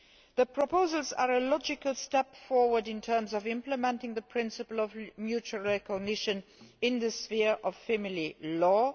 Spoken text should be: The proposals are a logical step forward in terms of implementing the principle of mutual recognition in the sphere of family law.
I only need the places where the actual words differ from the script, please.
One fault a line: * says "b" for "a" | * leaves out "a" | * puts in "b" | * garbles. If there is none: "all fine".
all fine